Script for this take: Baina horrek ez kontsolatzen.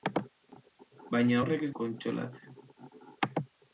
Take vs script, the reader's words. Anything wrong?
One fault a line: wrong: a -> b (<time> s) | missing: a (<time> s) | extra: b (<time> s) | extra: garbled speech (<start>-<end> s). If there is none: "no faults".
no faults